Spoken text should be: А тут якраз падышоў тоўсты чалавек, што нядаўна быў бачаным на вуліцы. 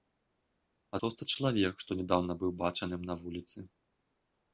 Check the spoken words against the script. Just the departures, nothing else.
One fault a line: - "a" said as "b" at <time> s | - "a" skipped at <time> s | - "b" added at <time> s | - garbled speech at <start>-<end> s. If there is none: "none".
- "тут якраз падышоў" skipped at 1.0 s